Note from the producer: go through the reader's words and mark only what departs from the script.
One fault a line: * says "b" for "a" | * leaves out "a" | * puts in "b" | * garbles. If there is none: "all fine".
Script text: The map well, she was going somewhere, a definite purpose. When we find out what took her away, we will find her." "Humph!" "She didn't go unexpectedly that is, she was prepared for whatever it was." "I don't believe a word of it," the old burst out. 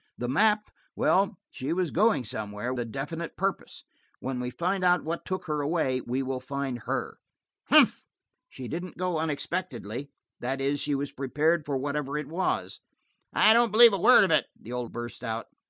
all fine